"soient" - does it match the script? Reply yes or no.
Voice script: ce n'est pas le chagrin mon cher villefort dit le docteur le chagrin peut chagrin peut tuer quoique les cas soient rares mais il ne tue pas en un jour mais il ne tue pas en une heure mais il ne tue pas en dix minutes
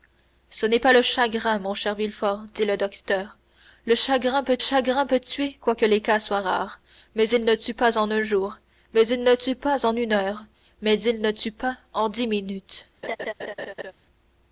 yes